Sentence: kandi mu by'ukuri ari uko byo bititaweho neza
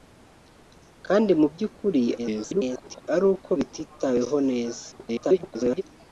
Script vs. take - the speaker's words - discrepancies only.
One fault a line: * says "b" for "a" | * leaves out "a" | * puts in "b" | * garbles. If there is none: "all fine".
* garbles
* leaves out "byo"
* garbles